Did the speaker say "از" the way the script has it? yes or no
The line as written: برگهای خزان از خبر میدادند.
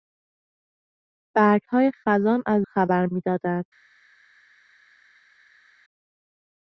yes